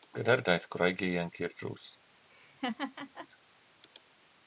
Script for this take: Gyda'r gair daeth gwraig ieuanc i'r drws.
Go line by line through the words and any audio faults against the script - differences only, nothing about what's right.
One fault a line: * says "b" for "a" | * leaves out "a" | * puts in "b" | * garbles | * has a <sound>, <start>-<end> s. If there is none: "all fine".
* leaves out "gair"
* has a laugh, 2.3-3.3 s